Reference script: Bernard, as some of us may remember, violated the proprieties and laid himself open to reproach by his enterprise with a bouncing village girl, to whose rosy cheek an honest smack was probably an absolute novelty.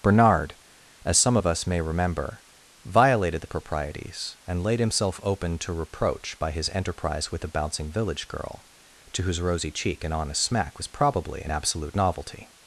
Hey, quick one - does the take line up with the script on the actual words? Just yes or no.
yes